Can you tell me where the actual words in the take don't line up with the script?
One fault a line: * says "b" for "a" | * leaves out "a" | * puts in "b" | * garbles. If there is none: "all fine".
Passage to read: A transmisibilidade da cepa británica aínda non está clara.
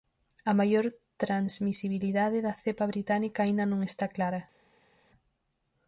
* puts in "maior"